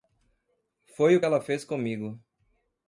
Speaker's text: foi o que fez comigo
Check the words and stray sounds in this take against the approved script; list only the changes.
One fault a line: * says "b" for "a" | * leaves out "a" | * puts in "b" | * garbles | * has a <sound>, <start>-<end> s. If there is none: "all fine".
* puts in "ela"